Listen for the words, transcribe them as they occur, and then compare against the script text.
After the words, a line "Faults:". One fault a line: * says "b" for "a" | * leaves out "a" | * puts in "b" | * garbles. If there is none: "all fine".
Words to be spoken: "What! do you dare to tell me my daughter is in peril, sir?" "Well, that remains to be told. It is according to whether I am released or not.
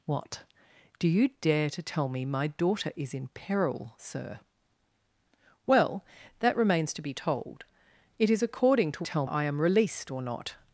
"What! do you dare to tell me my daughter is in peril, sir?" "Well, that remains to be told. It is according to tell I am released or not.
Faults:
* says "tell" for "whether"